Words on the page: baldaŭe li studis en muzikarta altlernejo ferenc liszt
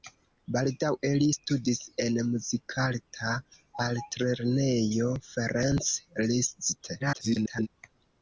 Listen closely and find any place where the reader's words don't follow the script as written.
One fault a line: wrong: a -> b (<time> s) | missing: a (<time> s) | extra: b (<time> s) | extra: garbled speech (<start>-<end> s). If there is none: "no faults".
extra: garbled speech (7.0-7.7 s)